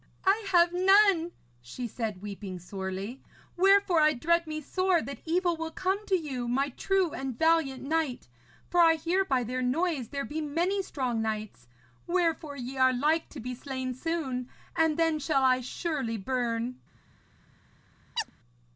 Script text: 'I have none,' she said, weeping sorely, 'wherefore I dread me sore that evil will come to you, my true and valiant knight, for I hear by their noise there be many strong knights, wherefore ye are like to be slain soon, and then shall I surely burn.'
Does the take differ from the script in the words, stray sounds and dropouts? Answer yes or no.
yes